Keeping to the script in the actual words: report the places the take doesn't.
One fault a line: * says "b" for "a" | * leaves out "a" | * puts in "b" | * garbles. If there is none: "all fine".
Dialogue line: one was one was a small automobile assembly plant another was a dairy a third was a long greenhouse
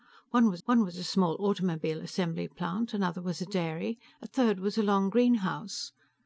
all fine